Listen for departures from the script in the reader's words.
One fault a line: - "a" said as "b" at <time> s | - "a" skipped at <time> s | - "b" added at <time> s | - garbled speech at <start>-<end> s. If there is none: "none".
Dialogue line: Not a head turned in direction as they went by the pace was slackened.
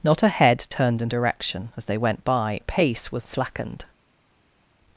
none